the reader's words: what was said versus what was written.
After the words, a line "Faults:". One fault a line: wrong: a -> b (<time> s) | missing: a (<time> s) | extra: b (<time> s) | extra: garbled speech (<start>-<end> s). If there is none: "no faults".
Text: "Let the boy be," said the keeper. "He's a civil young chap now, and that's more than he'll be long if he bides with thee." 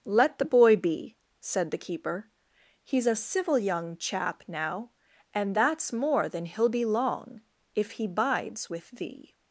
"Let the boy be," said the keeper. "He's a civil young chap now, and that's more than he'll be long if he bides with thee."
Faults:
no faults